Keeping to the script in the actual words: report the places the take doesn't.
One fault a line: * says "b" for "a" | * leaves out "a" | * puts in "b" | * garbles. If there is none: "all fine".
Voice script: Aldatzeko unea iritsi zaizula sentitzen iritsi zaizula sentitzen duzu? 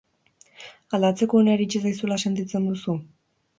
* leaves out "iritsi zaizula sentitzen"